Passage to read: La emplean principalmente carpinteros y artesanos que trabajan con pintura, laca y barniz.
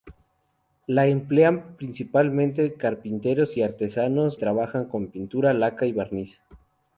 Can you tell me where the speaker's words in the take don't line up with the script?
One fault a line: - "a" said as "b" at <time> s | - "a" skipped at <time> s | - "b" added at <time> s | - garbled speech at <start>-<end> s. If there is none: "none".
- "que" skipped at 4.4 s